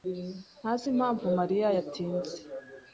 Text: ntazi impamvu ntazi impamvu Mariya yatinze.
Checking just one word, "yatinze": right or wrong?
right